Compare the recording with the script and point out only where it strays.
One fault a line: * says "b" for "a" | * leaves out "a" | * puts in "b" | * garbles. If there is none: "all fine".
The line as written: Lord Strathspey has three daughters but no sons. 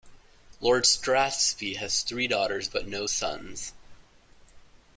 all fine